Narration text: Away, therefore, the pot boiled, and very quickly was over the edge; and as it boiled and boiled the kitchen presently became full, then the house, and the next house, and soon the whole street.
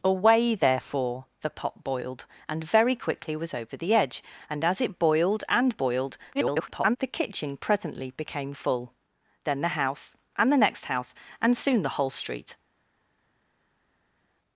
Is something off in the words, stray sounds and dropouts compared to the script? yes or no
yes